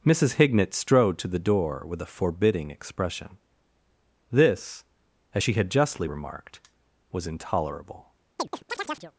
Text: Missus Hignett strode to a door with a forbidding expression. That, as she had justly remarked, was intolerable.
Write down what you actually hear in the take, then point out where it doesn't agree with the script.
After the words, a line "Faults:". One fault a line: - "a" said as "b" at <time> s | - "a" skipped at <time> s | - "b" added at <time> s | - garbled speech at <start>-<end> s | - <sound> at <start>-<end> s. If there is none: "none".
Missus Hignett strode to the door with a forbidding expression. This, as she had justly remarked, was intolerable.
Faults:
- "a" said as "the" at 1.3 s
- "That" said as "This" at 4.3 s
- chirp at 8.4-9.1 s